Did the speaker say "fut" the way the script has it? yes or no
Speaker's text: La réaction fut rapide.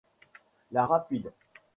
no